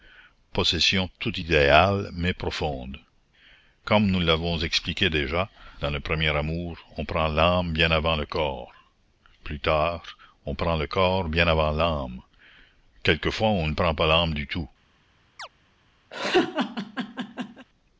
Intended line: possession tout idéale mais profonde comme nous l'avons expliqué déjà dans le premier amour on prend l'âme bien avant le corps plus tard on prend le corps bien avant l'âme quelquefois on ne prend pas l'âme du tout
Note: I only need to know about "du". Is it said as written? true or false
true